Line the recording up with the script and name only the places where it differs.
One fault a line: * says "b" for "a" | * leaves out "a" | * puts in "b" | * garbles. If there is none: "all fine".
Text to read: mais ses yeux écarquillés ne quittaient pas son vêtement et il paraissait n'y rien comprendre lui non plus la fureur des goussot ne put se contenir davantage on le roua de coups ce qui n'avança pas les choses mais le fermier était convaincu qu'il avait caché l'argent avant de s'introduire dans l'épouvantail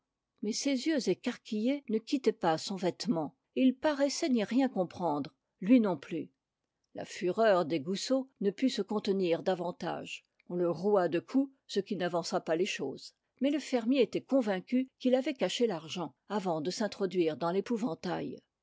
all fine